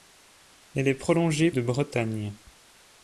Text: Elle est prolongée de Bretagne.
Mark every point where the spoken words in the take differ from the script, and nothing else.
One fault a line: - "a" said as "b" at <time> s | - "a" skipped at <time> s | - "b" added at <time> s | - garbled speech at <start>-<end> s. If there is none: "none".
none